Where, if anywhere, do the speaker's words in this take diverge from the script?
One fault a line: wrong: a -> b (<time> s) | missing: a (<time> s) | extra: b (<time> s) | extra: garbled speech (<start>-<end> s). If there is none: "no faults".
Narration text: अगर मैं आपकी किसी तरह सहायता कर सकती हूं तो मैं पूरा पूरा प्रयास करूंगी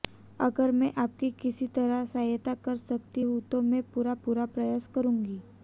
no faults